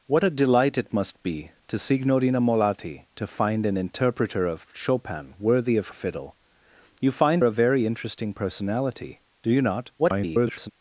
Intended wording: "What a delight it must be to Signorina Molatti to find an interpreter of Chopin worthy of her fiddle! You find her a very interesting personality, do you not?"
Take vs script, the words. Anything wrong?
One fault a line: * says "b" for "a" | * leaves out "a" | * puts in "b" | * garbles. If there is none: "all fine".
* leaves out "her"
* leaves out "her"
* garbles